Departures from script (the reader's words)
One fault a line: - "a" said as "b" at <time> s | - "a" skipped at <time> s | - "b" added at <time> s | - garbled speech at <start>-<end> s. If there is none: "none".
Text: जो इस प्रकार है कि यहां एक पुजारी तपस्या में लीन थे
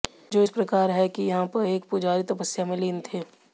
none